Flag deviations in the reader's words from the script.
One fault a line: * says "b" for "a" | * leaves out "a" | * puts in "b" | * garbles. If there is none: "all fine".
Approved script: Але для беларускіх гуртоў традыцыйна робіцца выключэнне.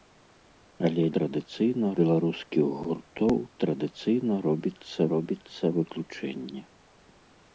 * says "традыцыйна" for "для"
* puts in "робіцца"